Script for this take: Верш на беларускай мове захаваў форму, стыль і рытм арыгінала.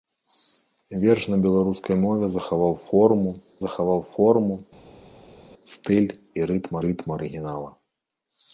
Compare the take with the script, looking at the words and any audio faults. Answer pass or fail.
fail